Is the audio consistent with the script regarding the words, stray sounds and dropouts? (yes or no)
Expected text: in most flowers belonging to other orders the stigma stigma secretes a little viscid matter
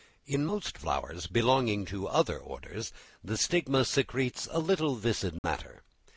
no